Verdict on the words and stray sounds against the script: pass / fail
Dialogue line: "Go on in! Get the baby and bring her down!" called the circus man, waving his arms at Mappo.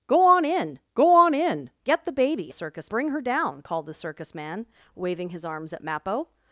fail